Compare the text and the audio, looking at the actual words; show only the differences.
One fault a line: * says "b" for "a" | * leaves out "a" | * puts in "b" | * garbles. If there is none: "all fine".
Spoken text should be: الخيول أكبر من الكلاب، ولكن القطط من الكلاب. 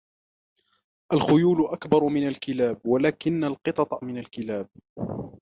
all fine